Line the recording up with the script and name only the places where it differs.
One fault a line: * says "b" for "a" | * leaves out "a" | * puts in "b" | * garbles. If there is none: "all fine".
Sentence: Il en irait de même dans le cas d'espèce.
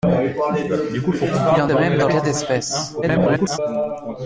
* leaves out "irait"
* leaves out "le"
* garbles